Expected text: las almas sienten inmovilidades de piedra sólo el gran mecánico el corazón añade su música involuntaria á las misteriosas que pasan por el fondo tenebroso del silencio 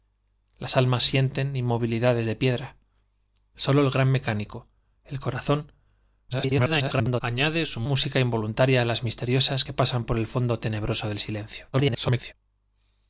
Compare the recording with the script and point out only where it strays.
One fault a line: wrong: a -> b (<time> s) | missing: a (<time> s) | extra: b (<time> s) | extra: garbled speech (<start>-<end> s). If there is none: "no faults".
extra: garbled speech (6.3-7.2 s)
extra: garbled speech (11.7-12.3 s)